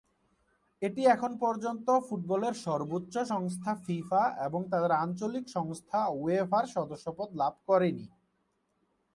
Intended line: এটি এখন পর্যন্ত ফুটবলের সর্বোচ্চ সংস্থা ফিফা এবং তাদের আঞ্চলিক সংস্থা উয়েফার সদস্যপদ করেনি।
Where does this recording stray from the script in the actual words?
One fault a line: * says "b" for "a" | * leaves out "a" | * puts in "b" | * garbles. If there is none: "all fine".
* puts in "লাভ"